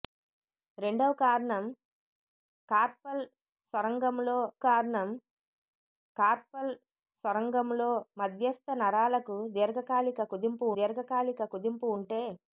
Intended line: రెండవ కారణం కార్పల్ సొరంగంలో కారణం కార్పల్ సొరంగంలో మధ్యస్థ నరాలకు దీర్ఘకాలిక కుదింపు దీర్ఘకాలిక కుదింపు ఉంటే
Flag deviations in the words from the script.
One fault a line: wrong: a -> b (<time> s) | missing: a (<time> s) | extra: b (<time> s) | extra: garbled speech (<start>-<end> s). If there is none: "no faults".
no faults